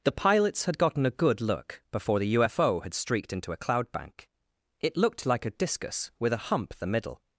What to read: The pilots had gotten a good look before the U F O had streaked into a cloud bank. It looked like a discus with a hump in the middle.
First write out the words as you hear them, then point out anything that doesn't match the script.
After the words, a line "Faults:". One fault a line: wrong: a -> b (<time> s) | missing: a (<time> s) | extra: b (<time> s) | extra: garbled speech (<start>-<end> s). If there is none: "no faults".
The pilots had gotten a good look before the U F O had streaked into a cloud bank. It looked like a discus with a hump the middle.
Faults:
missing: in (6.7 s)